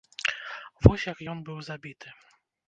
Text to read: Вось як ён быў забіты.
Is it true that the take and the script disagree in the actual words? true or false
false